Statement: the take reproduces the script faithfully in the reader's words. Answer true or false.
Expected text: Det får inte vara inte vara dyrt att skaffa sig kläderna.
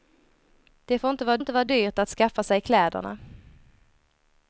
true